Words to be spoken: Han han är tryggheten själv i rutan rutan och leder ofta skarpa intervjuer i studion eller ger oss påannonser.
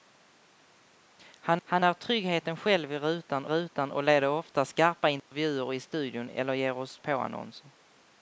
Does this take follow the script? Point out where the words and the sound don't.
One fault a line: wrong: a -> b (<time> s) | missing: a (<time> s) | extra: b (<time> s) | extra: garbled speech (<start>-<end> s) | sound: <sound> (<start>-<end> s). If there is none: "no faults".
sound: dropout (5.2-5.3 s)